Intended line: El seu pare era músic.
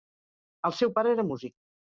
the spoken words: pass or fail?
pass